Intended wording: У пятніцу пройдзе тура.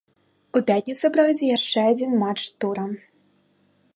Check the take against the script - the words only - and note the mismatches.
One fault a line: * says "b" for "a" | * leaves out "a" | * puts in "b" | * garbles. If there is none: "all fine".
* puts in "яшчэ адзін матч"